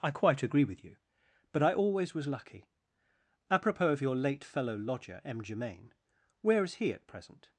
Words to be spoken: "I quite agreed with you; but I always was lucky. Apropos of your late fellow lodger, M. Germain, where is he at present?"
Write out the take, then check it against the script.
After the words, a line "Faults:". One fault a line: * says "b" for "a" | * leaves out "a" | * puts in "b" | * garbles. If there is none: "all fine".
"I quite agree with you; but I always was lucky. Apropos of your late fellow lodger, M. Germain, where is he at present?"
Faults:
* says "agree" for "agreed"